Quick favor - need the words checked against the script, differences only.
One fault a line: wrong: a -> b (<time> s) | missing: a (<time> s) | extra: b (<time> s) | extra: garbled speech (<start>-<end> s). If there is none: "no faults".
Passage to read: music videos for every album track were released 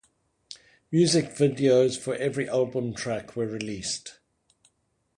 no faults